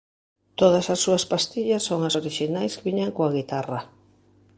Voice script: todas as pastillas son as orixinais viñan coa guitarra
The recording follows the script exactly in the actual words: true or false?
false